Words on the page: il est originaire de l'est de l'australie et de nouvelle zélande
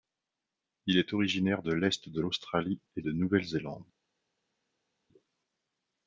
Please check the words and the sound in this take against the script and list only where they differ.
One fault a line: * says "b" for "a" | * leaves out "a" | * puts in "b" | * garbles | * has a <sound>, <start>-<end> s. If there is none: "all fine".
all fine